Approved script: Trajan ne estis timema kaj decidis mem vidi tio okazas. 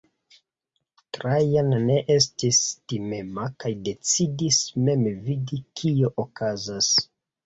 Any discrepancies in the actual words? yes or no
yes